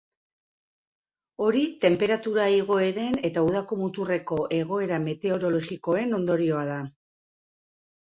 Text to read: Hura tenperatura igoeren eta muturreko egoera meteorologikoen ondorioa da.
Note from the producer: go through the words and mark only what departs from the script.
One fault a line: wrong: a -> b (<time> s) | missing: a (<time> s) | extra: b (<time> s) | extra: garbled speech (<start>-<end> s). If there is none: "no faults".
wrong: Hura -> Hori (1.5 s)
extra: udako (3.5 s)